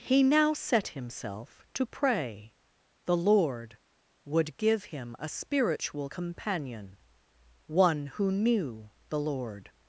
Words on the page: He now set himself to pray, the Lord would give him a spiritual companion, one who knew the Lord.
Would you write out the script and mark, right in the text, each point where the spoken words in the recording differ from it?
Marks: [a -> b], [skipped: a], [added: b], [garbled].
He now set himself to pray, the Lord would give him a spiritual companion, one who knew the Lord.